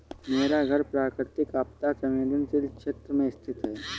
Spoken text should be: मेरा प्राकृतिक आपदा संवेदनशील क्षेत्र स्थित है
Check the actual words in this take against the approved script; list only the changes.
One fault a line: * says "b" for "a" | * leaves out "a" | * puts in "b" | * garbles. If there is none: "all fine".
* puts in "घर"
* puts in "में"